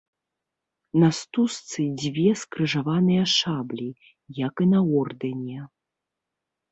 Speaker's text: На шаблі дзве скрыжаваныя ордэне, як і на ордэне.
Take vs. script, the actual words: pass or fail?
fail